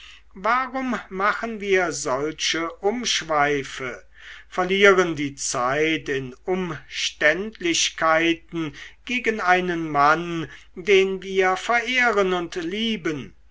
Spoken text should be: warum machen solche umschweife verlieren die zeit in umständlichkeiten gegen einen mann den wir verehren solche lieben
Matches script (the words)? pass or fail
fail